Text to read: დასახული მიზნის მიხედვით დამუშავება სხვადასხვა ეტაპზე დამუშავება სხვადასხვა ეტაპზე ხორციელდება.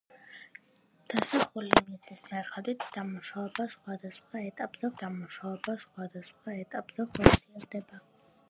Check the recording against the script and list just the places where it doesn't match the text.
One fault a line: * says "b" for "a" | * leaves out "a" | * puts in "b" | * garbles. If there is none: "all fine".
all fine